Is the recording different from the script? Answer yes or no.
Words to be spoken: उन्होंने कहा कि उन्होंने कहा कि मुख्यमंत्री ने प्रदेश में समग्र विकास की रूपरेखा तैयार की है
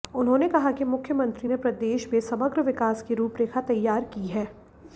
yes